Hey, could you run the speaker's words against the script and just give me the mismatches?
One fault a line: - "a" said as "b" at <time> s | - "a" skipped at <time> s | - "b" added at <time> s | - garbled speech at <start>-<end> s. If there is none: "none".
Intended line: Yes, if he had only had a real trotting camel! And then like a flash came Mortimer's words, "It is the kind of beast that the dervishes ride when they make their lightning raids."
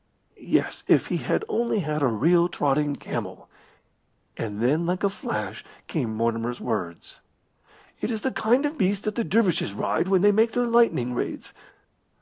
none